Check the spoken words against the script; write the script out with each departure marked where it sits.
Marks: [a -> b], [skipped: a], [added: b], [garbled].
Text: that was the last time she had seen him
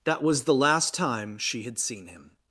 that was the last time she had seen him